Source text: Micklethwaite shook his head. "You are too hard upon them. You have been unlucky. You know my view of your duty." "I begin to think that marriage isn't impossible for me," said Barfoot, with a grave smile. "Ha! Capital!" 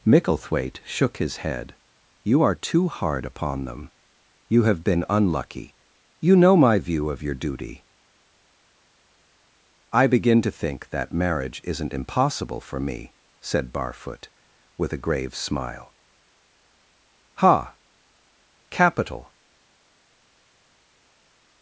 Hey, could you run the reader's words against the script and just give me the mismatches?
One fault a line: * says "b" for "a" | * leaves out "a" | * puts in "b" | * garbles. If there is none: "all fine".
all fine